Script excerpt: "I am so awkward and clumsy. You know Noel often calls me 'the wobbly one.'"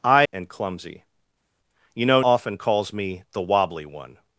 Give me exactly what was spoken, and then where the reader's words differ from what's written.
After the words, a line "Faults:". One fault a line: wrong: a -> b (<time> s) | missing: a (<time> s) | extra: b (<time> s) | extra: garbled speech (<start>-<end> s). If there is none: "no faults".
"I and clumsy. You know Often calls me 'the wobbly one.'"
Faults:
missing: am so awkward (0.2 s)
missing: Noel (2.2 s)